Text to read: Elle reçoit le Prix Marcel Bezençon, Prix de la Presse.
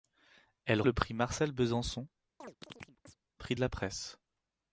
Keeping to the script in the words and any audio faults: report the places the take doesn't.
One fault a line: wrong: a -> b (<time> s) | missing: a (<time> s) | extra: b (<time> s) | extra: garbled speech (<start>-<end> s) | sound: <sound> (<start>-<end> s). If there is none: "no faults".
missing: reçoit (0.8 s)
sound: chirp (2.4-3.2 s)